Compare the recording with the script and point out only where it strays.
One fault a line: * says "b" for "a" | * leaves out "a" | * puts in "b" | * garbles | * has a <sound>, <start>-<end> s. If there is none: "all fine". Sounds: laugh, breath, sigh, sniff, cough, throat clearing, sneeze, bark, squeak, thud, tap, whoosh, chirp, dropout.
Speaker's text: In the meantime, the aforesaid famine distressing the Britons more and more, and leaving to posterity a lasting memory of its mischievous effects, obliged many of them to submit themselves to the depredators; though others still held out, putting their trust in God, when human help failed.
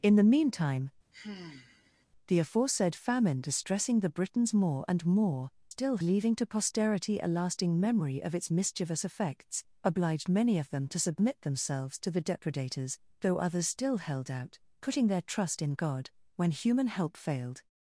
* has a sigh, 1.1-2.1 s
* says "still" for "and"